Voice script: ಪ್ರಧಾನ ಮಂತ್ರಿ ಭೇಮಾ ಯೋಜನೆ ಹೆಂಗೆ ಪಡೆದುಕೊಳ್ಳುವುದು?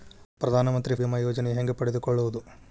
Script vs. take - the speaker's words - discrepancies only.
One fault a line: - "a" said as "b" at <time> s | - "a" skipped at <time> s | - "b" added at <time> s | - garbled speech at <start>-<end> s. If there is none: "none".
none